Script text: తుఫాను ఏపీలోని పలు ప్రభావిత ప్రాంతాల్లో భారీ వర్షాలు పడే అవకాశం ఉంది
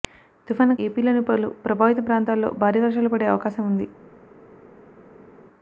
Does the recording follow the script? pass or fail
pass